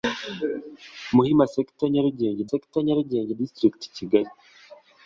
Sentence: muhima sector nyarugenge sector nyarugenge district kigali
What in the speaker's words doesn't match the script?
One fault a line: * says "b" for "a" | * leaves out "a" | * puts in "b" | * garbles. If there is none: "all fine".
all fine